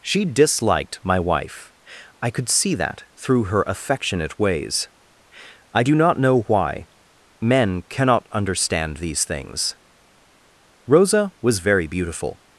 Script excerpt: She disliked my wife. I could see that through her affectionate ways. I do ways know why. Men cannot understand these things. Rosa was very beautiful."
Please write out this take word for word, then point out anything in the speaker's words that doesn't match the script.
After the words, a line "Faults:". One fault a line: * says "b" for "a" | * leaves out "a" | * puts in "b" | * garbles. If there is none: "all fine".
She disliked my wife. I could see that through her affectionate ways. I do not know why. Men cannot understand these things. Rosa was very beautiful."
Faults:
* says "not" for "ways"